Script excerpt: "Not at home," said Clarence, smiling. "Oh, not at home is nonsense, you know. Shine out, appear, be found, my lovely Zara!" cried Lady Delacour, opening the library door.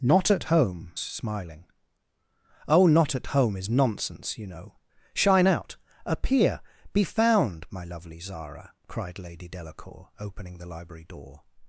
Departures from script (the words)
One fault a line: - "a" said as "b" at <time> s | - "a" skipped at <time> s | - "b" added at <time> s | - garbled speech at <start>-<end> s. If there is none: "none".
- "said Clarence" skipped at 0.9 s